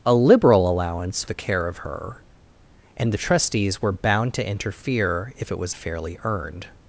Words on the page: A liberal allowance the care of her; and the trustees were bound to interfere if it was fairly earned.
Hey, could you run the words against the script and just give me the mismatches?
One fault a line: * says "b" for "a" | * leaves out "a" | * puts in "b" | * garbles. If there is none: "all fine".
all fine